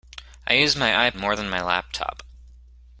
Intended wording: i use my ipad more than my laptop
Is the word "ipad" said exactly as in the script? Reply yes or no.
no